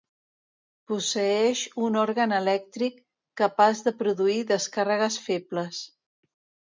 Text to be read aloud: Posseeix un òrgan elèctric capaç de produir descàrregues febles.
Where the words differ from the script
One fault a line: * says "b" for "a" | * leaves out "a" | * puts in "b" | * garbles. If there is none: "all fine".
all fine